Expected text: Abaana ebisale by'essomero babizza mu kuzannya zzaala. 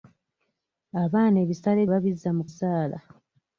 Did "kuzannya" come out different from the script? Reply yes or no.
yes